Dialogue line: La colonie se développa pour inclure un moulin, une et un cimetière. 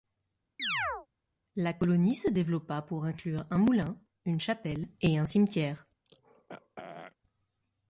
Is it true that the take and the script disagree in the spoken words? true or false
true